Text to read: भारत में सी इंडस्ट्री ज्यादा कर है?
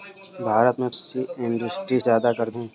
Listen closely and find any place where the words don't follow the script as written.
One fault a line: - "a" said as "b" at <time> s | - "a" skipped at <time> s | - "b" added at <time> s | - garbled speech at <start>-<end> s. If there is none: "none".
none